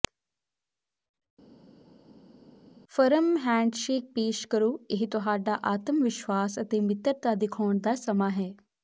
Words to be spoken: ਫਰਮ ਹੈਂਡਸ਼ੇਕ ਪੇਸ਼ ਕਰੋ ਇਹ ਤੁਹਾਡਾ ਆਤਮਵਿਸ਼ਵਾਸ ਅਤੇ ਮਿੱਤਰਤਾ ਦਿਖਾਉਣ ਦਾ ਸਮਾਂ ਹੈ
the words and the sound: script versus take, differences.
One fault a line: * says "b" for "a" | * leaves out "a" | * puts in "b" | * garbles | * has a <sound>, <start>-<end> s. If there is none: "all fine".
all fine